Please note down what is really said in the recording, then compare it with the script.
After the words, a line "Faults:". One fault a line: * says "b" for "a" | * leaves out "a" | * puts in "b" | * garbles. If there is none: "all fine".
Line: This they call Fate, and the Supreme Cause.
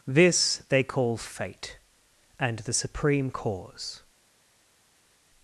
This they call Fate, and the Supreme Cause.
Faults:
all fine